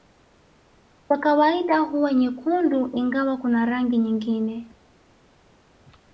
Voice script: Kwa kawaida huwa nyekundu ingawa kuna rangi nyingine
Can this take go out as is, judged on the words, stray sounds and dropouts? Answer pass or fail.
pass